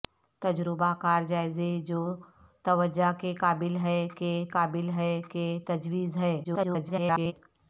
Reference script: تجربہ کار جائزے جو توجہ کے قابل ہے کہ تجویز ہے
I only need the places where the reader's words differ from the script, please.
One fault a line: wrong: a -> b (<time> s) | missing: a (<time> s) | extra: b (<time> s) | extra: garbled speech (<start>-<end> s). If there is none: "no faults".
extra: قابل ہے کہ (4.5 s)
extra: garbled speech (6.4-7.3 s)